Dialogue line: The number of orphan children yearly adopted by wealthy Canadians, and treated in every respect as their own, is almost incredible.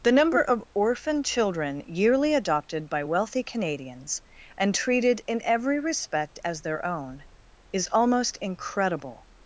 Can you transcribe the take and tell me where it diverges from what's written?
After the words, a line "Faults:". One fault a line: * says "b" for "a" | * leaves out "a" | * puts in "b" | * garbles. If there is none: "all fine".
The number of orphan children yearly adopted by wealthy Canadians, and treated in every respect as their own, is almost incredible.
Faults:
all fine